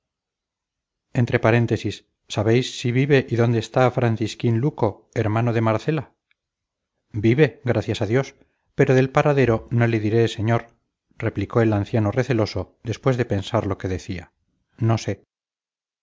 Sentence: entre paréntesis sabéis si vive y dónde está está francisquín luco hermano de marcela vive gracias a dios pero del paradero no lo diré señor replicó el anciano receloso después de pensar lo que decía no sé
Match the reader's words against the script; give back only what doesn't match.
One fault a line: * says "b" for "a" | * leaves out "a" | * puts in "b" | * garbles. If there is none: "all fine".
* leaves out "está"
* says "le" for "lo"